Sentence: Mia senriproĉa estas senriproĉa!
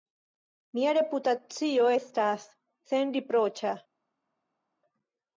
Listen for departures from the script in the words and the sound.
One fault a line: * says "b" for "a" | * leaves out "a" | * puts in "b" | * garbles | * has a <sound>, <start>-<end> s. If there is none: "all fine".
* says "reputacio" for "senriproĉa"